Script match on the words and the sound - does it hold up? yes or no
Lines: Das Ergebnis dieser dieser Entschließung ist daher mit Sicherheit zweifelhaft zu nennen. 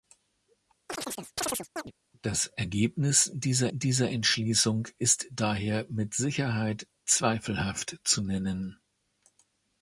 no